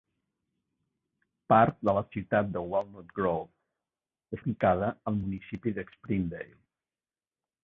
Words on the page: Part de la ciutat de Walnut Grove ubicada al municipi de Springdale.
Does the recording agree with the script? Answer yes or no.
yes